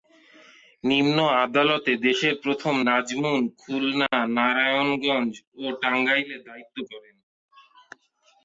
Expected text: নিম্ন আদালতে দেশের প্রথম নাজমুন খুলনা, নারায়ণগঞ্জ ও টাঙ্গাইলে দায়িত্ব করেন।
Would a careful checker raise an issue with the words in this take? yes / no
no